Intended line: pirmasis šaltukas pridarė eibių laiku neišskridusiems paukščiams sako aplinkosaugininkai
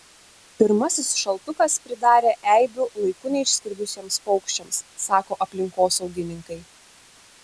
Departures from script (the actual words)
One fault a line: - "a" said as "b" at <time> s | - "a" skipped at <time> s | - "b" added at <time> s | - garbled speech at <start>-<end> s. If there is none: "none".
none